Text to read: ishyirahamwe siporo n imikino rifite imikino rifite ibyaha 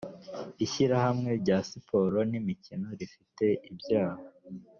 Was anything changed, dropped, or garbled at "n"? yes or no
no